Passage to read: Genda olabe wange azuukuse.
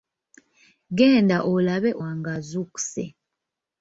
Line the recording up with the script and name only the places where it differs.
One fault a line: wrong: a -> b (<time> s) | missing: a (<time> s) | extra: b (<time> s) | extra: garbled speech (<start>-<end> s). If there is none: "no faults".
no faults